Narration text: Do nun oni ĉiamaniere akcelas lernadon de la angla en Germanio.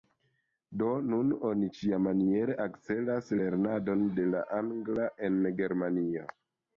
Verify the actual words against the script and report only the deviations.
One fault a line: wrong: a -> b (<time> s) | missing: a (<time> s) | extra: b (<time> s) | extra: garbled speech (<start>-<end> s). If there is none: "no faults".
no faults